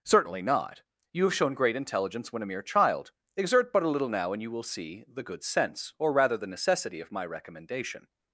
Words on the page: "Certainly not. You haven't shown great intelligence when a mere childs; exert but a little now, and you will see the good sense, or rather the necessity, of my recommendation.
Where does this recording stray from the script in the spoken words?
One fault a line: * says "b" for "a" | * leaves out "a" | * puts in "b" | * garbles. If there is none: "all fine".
* says "have" for "haven't"
* says "child" for "childs"